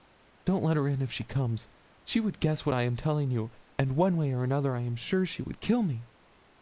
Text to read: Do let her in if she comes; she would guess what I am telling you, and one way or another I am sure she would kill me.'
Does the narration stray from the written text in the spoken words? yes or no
yes